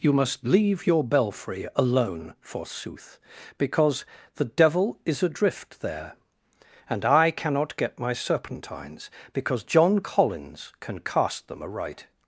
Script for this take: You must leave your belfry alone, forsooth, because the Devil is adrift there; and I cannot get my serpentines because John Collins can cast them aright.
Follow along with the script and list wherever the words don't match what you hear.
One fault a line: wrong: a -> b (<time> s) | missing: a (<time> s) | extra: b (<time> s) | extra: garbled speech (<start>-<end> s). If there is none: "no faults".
no faults